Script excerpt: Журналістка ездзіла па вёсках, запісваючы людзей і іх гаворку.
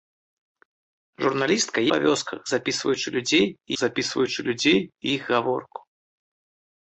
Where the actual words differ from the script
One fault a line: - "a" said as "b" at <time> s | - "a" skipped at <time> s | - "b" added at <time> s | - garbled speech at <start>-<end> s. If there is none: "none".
- "ездзіла" skipped at 1.8 s
- "запісваючы людзей і" added at 3.8 s